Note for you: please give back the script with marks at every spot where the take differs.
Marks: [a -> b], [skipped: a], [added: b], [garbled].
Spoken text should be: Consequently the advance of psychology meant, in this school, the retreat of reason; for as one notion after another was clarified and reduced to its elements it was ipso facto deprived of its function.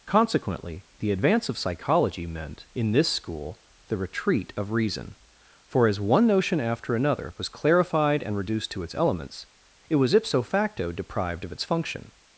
Consequently the advance of psychology meant, in this school, the retreat of reason; for as one notion after another was clarified and reduced to its elements it was ipso facto deprived of its function.